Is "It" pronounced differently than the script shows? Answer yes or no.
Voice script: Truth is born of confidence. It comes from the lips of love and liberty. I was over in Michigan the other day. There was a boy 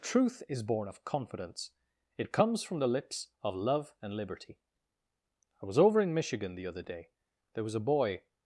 no